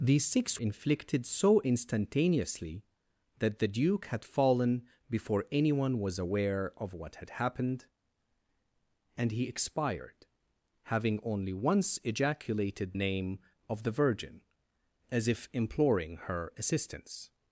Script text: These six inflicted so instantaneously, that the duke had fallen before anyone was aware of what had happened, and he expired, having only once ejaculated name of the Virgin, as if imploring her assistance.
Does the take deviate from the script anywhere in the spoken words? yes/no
no